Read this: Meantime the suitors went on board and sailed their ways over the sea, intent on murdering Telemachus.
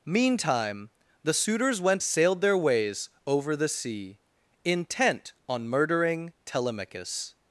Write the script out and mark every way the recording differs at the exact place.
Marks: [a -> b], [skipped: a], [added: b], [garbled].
Meantime the suitors went [skipped: on board and] sailed their ways over the sea, intent on murdering Telemachus.